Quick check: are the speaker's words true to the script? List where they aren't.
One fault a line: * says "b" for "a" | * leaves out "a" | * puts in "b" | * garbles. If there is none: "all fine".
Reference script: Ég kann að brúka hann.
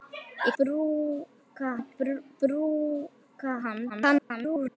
* says "brúka" for "kann"
* garbles